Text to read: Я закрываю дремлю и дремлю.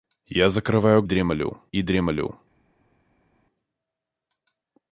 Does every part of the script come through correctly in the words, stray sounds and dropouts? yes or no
yes